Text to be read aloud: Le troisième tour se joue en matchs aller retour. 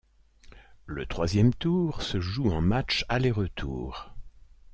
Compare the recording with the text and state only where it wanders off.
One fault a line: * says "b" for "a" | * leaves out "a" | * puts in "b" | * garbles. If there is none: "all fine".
all fine